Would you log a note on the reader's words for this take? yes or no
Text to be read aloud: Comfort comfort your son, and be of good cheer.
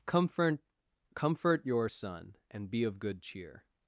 no